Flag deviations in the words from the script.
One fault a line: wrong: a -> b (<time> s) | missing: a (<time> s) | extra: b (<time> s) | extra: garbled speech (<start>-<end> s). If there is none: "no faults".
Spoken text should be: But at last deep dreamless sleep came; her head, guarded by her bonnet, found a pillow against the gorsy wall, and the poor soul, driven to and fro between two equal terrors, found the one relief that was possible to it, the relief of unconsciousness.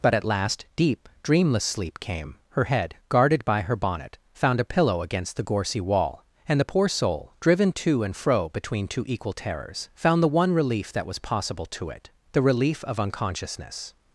no faults